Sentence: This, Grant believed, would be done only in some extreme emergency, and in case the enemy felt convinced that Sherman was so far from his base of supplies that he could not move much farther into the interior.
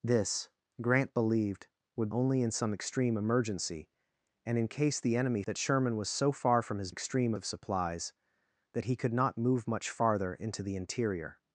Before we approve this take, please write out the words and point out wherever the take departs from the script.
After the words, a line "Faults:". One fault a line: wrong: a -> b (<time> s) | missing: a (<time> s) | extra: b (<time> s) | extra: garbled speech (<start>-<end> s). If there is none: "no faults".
This, Grant believed, would only in some extreme emergency, and in case the enemy that Sherman was so far from his extreme of supplies that he could not move much farther into the interior.
Faults:
missing: be done (2.1 s)
missing: felt convinced (5.4 s)
wrong: base -> extreme (6.9 s)